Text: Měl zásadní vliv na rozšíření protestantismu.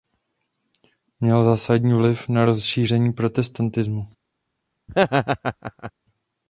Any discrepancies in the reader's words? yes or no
no